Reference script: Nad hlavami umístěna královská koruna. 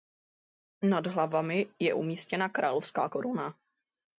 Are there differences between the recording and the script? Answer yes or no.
yes